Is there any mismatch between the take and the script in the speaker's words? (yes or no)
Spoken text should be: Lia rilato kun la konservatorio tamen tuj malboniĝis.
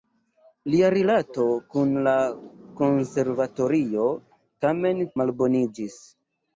yes